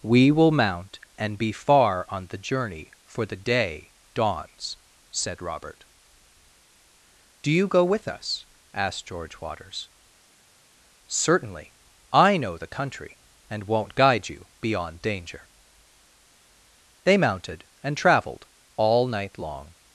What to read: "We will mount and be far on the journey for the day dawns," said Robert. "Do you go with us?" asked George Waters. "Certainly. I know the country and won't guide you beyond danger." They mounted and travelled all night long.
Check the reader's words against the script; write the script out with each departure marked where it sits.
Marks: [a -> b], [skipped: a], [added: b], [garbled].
"We will mount and be far on the journey for the day dawns," said Robert. "Do you go with us?" asked George Waters. "Certainly. I know the country and won't guide you beyond danger." They mounted and travelled all night long.